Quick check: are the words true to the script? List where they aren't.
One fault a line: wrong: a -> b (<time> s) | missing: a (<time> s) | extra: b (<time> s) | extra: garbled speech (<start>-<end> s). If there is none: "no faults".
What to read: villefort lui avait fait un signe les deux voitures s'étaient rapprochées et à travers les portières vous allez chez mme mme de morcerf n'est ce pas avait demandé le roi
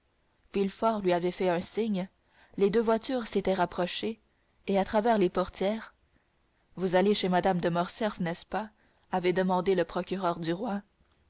missing: mme (7.6 s)
extra: procureur du (9.8 s)